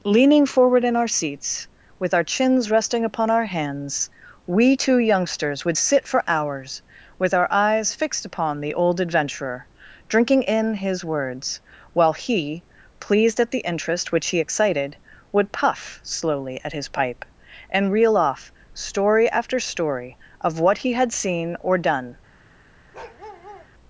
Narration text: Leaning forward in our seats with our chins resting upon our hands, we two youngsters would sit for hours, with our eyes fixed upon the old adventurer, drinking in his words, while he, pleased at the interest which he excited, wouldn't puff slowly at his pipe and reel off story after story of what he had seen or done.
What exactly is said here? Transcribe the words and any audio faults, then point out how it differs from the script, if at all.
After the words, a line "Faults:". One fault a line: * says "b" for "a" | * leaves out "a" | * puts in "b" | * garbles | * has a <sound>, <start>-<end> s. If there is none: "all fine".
Leaning forward in our seats with our chins resting upon our hands, we two youngsters would sit for hours, with our eyes fixed upon the old adventurer, drinking in his words, while he, pleased at the interest which he excited, would puff slowly at his pipe and reel off story after story of what he had seen or done.
Faults:
* says "would" for "wouldn't"
* has a bark, 22.9-23.7 s